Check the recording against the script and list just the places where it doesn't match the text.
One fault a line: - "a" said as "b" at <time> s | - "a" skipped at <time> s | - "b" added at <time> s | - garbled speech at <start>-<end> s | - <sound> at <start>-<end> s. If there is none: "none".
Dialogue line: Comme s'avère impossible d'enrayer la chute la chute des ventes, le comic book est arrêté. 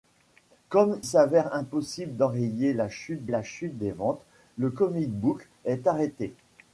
none